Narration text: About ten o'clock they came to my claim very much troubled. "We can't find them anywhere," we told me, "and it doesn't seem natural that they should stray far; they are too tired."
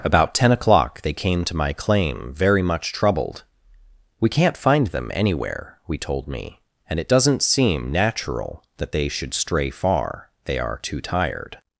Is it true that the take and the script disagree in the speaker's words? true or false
false